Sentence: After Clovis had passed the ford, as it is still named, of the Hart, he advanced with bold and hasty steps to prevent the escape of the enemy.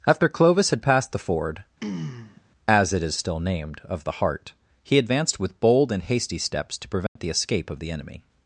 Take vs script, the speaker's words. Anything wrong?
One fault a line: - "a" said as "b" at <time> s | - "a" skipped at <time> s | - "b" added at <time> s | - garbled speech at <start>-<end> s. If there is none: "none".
none